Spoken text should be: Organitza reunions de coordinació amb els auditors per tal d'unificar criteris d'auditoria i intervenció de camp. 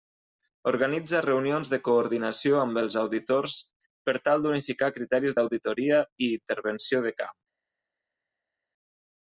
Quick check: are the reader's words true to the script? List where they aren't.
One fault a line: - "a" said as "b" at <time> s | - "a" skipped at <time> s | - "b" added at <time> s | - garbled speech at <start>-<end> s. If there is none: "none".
none